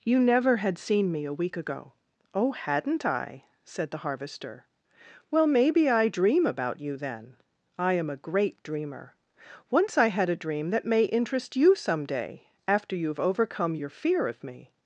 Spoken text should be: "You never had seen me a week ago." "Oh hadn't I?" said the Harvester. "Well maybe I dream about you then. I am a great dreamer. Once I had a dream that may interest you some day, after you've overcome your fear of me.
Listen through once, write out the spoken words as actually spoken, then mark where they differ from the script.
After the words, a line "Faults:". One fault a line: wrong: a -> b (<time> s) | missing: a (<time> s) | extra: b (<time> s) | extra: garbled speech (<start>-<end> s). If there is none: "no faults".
"You never had seen me a week ago." "Oh hadn't I?" said the Harvester. "Well maybe I dream about you then. I am a great dreamer. Once I had a dream that may interest you some day, after you've overcome your fear of me.
Faults:
no faults